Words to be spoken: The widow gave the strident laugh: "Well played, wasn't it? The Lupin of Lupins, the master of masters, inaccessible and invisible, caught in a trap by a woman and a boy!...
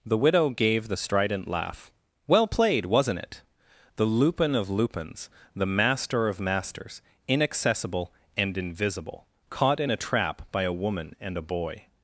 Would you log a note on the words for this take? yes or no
no